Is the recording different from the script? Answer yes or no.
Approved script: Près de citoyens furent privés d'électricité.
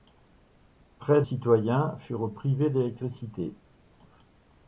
yes